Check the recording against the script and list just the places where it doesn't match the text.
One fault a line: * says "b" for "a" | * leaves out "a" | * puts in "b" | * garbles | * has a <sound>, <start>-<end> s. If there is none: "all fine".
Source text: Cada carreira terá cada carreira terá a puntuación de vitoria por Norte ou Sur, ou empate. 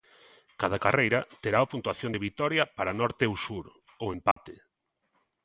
* leaves out "cada carreira terá"
* says "para" for "por"
* has a dropout, 4.3-4.4 s